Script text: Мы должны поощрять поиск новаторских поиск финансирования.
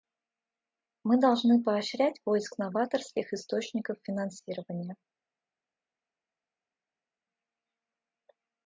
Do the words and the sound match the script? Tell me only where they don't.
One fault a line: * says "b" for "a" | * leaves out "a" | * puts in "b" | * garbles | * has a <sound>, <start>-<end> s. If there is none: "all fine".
* says "источников" for "поиск"